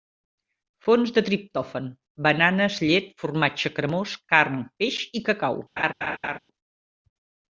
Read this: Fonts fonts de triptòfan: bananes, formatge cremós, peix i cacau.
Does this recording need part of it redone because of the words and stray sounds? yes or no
yes